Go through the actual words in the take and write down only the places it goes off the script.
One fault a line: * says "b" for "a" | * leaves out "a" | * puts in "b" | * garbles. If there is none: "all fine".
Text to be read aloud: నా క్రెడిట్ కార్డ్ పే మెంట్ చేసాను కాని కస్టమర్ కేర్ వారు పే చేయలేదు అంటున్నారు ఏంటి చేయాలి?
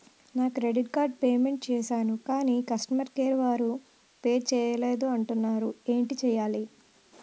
all fine